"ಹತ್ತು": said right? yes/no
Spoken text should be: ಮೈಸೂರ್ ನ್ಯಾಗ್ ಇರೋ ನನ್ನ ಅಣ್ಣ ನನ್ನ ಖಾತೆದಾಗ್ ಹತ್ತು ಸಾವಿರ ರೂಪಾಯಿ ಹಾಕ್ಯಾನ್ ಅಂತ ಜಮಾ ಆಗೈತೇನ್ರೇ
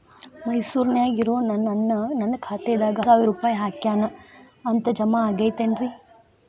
no